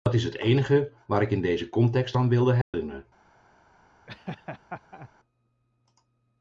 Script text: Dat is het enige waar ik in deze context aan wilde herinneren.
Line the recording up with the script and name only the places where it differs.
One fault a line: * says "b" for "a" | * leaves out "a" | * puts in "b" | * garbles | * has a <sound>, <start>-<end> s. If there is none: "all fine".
* has a dropout, 2.6-2.7 s
* has a laugh, 4.1-5.1 s